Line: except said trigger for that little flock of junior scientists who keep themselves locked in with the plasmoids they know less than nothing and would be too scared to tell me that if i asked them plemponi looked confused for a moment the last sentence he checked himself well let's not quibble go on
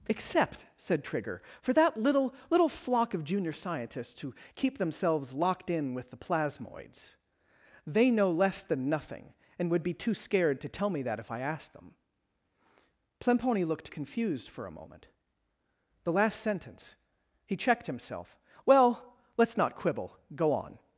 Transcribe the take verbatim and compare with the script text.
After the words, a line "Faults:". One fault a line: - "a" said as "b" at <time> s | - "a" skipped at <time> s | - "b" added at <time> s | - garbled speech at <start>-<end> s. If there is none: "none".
except said trigger for that little little flock of junior scientists who keep themselves locked in with the plasmoids they know less than nothing and would be too scared to tell me that if i asked them plemponi looked confused for a moment the last sentence he checked himself well let's not quibble go on
Faults:
- "little" added at 2.5 s